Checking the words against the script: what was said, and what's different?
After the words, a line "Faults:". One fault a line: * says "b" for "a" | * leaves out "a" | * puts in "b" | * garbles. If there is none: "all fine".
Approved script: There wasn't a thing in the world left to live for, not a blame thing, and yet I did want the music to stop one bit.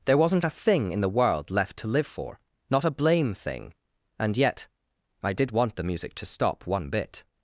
There wasn't a thing in the world left to live for, not a blame thing, and yet I did want the music to stop one bit.
Faults:
all fine